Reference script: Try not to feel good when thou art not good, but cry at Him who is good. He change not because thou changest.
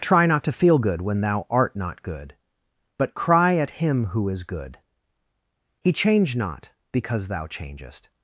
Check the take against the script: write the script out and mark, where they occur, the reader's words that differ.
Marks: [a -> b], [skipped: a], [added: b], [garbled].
Try not to feel good when thou art not good, but cry at Him who is good. He change not because thou changest.